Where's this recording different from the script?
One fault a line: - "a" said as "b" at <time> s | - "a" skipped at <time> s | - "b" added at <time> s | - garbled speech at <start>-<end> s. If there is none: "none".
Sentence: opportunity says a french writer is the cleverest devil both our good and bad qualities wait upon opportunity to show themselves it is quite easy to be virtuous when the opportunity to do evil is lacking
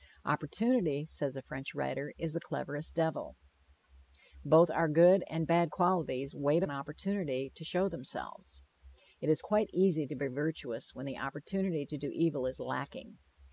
- "upon" skipped at 6.6 s